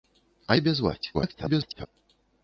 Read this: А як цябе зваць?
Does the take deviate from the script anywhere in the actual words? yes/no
yes